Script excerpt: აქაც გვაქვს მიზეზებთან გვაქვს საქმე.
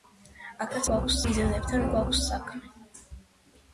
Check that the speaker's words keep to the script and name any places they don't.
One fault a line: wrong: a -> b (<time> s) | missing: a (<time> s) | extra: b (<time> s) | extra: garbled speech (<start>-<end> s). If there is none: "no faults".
no faults